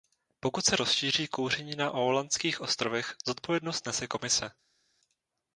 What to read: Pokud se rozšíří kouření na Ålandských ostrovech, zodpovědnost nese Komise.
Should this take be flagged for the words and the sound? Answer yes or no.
no